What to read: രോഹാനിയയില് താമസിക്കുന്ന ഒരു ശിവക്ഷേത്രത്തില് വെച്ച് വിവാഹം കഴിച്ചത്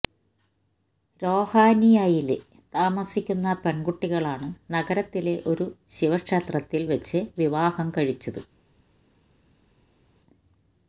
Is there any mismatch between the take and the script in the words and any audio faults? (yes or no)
yes